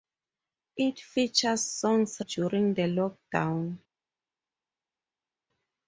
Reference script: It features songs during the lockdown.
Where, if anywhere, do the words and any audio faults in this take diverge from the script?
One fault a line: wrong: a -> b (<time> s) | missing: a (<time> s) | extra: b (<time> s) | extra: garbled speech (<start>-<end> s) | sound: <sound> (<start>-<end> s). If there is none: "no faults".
no faults